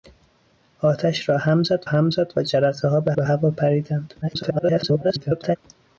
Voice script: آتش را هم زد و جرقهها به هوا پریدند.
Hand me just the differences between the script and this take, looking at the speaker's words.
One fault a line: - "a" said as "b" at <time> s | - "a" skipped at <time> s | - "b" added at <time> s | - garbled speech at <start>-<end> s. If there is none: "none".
- "هم زد" added at 1.8 s
- "به" added at 3.1 s
- garbled speech at 4.2-5.6 s